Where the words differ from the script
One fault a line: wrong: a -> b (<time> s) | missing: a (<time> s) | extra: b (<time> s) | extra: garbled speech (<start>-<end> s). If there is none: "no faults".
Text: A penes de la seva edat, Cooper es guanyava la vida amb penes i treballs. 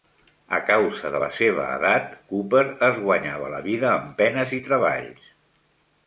wrong: penes -> causa (0.7 s)